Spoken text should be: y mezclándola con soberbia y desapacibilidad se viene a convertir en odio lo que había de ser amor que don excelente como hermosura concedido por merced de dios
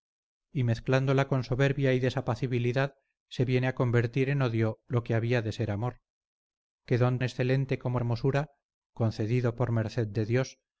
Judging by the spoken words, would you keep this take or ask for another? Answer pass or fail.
pass